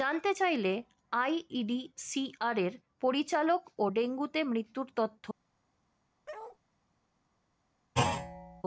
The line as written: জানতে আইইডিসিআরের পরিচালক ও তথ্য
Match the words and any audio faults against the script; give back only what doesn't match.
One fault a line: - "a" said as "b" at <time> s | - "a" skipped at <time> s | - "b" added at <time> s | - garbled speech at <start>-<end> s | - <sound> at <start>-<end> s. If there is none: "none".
- "চাইলে" added at 0.3 s
- "ডেঙ্গুতে মৃত্যুর" added at 3.9 s
- bark at 6.3-6.6 s
- thud at 7.9-8.6 s